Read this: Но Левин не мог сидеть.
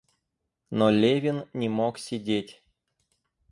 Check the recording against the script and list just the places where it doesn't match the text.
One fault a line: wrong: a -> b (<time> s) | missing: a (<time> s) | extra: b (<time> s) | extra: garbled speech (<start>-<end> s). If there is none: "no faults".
no faults